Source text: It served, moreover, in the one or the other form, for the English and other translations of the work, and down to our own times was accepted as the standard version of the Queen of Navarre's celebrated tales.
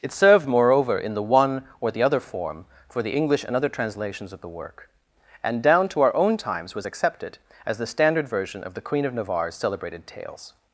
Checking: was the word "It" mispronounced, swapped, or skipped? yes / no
no